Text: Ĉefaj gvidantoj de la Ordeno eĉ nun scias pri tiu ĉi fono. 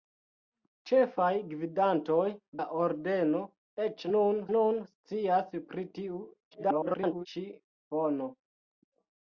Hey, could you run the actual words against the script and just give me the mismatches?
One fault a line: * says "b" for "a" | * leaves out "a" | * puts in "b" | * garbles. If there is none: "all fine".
* leaves out "de"
* puts in "nun"
* garbles